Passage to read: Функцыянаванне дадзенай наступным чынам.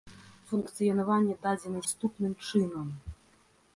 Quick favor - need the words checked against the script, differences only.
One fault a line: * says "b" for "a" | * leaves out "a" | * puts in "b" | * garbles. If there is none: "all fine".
all fine